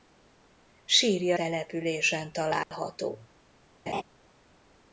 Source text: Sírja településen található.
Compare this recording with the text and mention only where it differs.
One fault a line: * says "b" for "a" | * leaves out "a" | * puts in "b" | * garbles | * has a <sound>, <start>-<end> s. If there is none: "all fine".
* has a dropout, 2.6-2.7 s
* has a laugh, 3.9-4.0 s